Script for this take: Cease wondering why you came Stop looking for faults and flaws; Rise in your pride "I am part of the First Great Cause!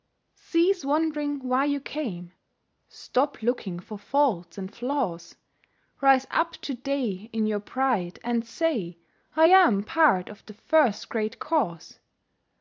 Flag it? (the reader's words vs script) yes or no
yes